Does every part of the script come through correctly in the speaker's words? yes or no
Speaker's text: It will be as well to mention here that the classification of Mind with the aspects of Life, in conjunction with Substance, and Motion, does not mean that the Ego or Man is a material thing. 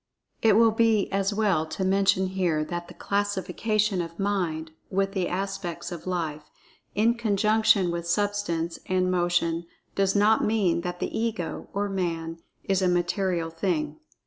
yes